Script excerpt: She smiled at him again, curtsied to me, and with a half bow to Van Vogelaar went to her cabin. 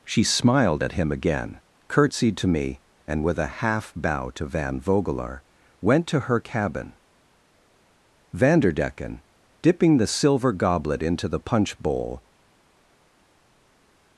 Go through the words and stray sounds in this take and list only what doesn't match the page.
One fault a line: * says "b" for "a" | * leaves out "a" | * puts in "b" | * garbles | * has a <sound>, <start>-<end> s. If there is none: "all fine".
* puts in "Vanderdecken dipping the silver goblet into the punch bowl"